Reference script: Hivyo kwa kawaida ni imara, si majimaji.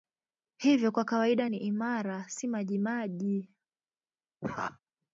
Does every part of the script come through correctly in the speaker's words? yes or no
yes